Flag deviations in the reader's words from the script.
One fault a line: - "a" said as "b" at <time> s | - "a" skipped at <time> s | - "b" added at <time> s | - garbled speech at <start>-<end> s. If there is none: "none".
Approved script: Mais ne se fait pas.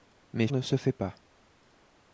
none